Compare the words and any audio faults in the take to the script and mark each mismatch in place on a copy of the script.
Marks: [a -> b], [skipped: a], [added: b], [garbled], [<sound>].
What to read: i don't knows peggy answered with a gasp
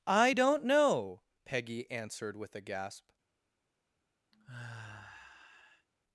i don't [knows -> know] peggy answered with a gasp [sigh]